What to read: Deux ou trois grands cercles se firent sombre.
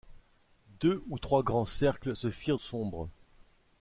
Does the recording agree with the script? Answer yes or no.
yes